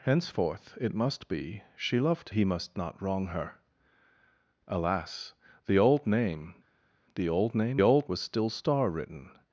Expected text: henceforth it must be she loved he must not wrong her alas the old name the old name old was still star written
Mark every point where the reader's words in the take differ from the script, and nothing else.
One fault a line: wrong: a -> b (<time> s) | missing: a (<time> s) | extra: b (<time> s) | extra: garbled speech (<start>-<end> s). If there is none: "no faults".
no faults